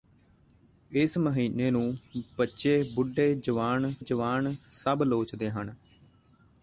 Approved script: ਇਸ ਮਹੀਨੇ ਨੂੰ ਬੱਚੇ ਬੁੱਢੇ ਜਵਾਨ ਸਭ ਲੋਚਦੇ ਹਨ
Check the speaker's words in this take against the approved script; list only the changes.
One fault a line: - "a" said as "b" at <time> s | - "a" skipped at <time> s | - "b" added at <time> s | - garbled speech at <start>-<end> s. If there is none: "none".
- "ਜਵਾਨ" added at 4.0 s